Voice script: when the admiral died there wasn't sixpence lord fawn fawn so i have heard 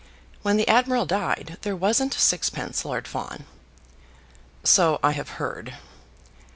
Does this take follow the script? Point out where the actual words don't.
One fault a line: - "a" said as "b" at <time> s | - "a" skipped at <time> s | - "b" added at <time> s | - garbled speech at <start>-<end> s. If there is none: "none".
- "fawn" skipped at 3.5 s